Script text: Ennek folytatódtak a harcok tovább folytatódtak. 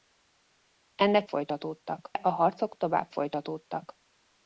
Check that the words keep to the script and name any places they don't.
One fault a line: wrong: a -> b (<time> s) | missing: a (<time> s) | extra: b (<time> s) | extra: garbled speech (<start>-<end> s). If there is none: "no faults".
no faults